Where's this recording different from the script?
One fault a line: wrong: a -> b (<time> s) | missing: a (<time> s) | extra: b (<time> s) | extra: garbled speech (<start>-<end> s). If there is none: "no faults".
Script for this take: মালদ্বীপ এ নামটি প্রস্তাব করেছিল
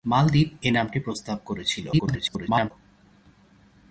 extra: garbled speech (1.9-2.7 s)